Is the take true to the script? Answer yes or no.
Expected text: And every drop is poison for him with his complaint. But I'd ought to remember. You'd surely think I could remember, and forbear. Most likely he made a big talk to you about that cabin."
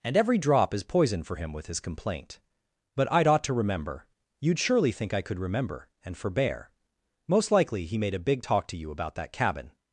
yes